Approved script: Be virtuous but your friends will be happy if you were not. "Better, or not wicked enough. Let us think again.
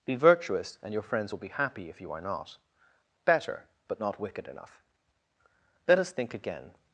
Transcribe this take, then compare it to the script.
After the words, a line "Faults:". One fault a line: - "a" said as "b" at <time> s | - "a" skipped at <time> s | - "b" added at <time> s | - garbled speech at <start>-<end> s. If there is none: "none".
Be virtuous and your friends will be happy if you are not. "Better, but not wicked enough. Let us think again.
Faults:
- "but" said as "and" at 0.8 s
- "were" said as "are" at 2.1 s
- "or" said as "but" at 3.9 s